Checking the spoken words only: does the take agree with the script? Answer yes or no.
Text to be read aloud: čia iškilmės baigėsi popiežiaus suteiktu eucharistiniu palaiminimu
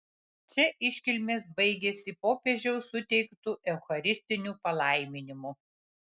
yes